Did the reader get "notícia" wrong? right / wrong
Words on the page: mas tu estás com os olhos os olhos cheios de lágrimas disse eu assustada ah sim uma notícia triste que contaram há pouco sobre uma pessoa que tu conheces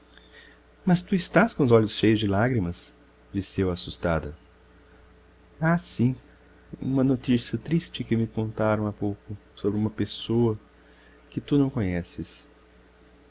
right